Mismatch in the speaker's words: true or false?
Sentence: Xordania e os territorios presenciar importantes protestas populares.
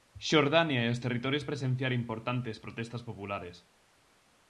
false